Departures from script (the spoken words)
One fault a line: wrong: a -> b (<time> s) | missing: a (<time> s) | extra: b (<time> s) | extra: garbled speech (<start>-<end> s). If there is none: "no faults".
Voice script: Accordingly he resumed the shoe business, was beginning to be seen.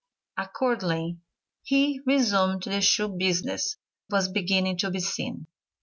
no faults